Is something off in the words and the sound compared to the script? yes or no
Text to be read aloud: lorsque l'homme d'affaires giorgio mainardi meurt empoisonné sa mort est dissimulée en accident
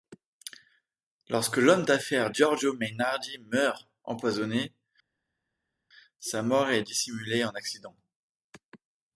no